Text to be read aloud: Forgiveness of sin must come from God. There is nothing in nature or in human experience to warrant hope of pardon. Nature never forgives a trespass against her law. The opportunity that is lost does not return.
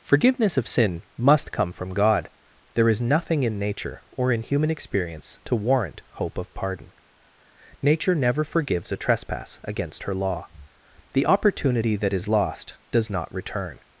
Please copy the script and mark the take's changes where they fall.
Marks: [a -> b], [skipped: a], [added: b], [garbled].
Forgiveness of sin must come from God. There is nothing in nature or in human experience to warrant hope of pardon. Nature never forgives a trespass against her law. The opportunity that is lost does not return.